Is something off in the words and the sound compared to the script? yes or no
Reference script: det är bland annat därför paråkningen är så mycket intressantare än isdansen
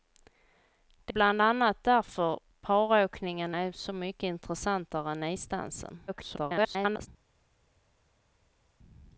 yes